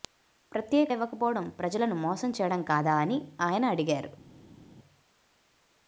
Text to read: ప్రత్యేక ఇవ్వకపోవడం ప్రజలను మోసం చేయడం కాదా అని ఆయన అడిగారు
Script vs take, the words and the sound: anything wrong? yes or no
no